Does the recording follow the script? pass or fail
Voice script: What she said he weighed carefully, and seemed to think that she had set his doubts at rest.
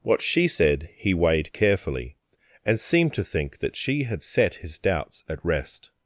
pass